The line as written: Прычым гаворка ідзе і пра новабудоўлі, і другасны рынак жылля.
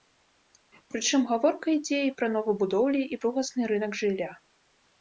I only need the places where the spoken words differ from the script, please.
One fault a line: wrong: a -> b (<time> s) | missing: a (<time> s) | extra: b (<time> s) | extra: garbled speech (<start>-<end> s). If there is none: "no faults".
no faults